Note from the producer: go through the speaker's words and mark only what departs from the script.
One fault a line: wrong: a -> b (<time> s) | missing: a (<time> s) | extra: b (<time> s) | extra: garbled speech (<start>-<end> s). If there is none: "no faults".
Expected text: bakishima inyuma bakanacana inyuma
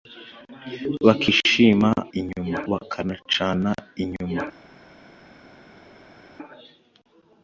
no faults